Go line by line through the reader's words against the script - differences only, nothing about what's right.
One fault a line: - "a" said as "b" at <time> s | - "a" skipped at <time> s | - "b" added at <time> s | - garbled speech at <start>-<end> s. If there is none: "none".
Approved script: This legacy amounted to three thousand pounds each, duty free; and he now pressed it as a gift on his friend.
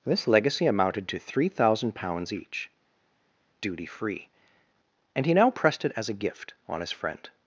none